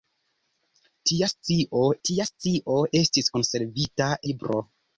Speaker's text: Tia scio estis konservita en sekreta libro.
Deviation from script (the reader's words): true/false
true